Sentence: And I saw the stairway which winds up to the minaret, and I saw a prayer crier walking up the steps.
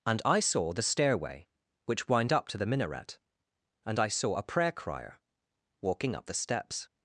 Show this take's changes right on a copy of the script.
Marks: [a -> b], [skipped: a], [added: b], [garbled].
And I saw the stairway which [winds -> wind] up to the minaret, and I saw a prayer crier walking up the steps.